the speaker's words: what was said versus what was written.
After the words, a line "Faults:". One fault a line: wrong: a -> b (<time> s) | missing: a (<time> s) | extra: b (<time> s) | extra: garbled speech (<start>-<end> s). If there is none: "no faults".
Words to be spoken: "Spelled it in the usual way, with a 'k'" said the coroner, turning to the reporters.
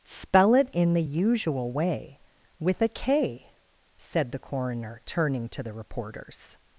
"Spell it in the usual way, with a 'k'" said the coroner, turning to the reporters.
Faults:
wrong: Spelled -> Spell (0.0 s)